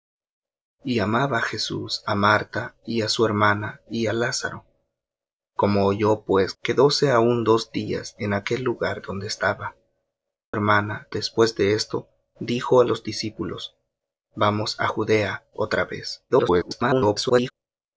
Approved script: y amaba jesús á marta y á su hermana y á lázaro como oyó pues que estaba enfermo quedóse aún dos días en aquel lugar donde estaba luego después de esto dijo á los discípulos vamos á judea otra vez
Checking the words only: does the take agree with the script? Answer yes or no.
no